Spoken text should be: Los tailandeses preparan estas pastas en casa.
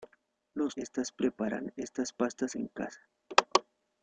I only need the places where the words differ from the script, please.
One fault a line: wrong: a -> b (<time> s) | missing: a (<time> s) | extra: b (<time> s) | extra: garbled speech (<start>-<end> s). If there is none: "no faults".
wrong: tailandeses -> estas (0.8 s)